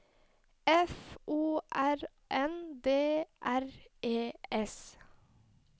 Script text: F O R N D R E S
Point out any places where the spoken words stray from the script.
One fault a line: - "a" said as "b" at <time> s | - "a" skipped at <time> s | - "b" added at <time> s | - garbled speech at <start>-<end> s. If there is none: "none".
none